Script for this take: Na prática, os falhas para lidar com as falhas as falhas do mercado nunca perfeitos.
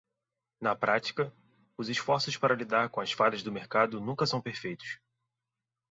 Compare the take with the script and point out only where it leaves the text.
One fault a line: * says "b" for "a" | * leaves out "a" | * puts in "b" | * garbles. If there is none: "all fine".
* says "esforços" for "falhas"
* leaves out "as falhas"
* puts in "são"